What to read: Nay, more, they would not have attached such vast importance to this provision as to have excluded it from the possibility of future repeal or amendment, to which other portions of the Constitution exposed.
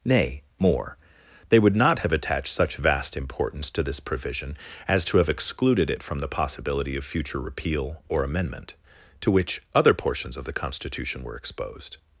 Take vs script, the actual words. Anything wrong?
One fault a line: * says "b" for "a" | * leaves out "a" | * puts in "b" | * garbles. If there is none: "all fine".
* puts in "were"